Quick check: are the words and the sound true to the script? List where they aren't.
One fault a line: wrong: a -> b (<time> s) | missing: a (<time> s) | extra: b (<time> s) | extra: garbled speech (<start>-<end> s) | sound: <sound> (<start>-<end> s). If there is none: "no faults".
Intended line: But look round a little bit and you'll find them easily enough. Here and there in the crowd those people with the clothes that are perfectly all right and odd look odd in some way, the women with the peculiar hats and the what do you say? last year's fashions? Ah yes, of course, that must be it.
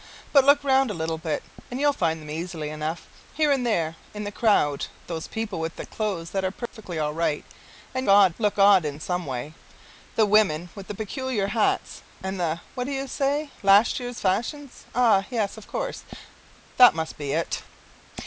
sound: dropout (6.7-6.7 s)